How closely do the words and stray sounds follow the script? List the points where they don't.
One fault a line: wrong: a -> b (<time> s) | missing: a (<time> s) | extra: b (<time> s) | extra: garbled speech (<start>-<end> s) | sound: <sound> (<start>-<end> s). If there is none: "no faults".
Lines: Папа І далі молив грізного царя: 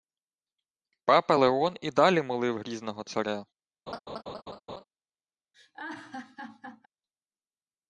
extra: Леон (1.3 s)
sound: laugh (3.9-4.8 s)
sound: laugh (5.5-6.9 s)